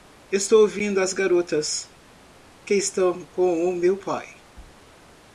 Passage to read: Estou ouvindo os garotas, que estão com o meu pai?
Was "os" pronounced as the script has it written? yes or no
no